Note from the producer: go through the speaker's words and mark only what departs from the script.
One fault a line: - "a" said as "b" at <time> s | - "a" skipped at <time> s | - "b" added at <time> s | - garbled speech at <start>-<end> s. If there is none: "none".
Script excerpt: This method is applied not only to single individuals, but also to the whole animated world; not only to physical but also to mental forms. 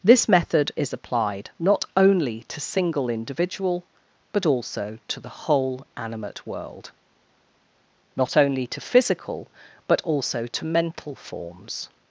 - "individuals" said as "individual" at 3.1 s
- "animated" said as "animate" at 6.0 s